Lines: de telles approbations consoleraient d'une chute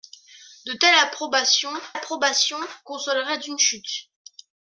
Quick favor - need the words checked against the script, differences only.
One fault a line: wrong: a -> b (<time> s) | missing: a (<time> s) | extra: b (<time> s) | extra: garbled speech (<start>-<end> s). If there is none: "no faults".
extra: approbations (1.9 s)